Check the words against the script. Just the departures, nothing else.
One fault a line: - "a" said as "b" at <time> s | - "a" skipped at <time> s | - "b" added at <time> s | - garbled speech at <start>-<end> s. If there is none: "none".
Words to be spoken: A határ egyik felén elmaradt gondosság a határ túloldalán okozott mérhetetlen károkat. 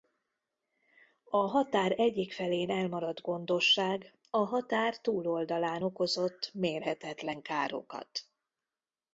none